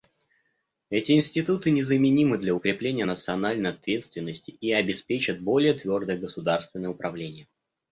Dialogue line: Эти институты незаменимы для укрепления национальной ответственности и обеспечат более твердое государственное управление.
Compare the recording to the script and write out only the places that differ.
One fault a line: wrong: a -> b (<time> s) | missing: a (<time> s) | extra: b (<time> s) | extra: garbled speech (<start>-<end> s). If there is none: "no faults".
no faults